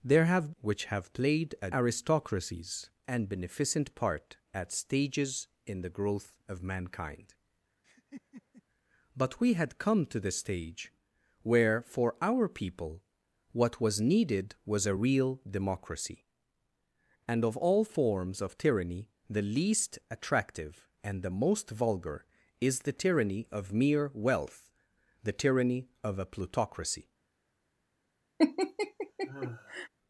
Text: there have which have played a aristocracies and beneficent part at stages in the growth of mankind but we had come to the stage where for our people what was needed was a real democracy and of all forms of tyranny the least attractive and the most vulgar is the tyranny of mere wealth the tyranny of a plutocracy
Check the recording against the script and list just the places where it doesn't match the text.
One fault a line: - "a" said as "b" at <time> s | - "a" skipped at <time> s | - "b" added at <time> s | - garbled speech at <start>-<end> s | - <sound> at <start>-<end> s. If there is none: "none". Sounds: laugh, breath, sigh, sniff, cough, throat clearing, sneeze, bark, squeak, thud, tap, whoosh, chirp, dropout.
- laugh at 7.8-8.6 s
- laugh at 28.4-29.9 s